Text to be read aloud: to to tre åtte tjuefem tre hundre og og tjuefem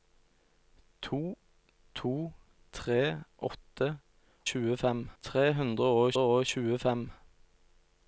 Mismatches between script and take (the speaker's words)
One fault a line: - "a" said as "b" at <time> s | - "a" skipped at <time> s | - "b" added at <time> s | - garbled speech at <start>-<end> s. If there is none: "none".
none